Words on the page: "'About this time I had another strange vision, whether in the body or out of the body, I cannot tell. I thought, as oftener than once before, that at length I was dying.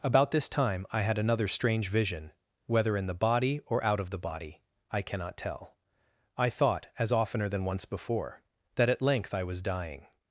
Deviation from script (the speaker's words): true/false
false